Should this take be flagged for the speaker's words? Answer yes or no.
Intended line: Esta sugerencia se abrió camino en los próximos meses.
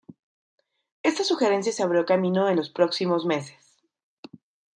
no